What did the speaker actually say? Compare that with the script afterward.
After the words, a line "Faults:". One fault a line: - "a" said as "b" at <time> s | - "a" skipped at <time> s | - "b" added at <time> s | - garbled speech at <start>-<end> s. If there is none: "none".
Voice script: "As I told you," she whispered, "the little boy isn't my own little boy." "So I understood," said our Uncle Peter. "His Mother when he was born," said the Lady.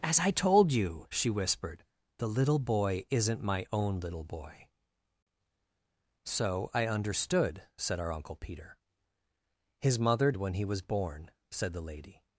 "As I told you," she whispered, "the little boy isn't my own little boy." "So I understood," said our Uncle Peter. "His Mother when he was born," said the Lady.
Faults:
none